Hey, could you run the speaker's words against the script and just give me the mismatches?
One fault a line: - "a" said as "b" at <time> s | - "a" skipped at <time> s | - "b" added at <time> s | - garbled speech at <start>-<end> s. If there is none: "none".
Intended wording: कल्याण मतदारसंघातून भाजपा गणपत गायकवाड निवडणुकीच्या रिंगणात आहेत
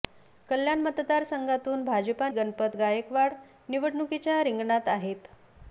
none